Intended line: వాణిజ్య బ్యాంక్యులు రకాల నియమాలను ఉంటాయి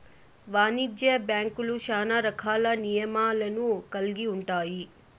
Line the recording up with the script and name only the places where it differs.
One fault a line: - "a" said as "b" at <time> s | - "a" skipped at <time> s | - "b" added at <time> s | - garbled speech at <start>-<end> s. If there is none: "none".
- "శ్యానా" added at 1.8 s
- "కల్గి" added at 3.9 s